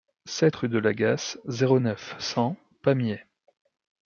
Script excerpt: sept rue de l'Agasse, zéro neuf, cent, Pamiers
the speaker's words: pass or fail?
pass